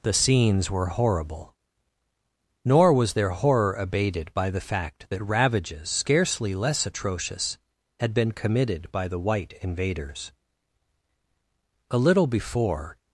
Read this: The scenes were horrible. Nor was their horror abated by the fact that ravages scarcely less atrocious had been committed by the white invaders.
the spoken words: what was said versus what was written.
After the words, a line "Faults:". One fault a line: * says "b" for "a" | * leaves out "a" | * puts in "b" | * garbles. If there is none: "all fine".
The scenes were horrible. Nor was their horror abated by the fact that ravages scarcely less atrocious had been committed by the white invaders. A little before
Faults:
* puts in "A little before"